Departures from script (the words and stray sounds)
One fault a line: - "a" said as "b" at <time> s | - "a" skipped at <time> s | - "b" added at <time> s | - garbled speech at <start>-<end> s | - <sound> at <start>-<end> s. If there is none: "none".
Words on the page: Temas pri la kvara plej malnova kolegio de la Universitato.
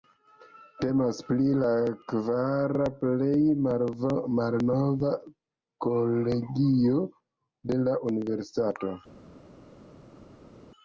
none